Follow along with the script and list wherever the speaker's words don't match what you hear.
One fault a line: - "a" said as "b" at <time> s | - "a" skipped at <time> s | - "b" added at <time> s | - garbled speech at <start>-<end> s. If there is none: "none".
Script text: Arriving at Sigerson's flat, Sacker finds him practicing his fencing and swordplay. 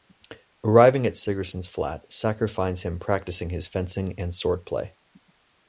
none